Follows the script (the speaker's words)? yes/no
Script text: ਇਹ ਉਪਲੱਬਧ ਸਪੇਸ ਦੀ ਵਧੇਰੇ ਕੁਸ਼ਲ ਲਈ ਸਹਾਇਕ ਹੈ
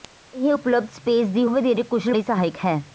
yes